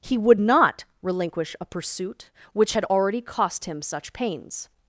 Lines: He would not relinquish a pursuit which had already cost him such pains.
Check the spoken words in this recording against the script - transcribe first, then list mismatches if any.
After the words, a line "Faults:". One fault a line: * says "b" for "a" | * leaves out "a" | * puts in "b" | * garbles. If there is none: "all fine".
He would not relinquish a pursuit which had already cost him such pains.
Faults:
all fine